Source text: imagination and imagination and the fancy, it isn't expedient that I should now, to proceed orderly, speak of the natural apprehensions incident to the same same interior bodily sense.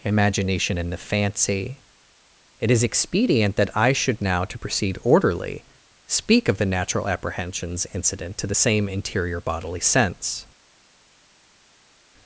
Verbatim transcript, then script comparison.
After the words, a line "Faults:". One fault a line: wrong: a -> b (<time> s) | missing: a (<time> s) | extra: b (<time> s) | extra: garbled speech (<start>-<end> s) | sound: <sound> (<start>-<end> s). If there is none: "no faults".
imagination and the fancy, it is expedient that I should now, to proceed orderly, speak of the natural apprehensions incident to the same interior bodily sense.
Faults:
missing: imagination and (0.9 s)
wrong: isn't -> is (2.7 s)
missing: same (8.9 s)